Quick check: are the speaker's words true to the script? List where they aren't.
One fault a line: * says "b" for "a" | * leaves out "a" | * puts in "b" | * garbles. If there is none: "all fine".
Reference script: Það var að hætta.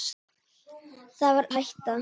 all fine